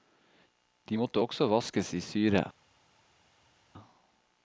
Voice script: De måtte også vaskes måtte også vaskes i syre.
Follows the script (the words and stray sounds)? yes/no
no